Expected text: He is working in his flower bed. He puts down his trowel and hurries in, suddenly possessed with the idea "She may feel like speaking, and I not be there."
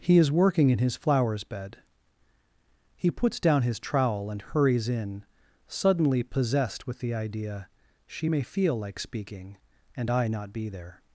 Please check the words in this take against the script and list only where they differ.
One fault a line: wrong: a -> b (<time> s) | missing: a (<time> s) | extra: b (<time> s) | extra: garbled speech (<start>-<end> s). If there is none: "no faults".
wrong: flower -> flowers (0.9 s)